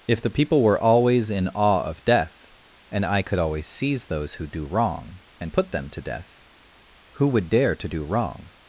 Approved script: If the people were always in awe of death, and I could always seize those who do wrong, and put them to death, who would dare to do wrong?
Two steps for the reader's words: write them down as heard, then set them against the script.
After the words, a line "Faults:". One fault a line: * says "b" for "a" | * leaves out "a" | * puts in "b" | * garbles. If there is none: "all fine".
If the people were always in awe of death, and I could always seize those who do wrong, and put them to death, who would dare to do wrong?
Faults:
all fine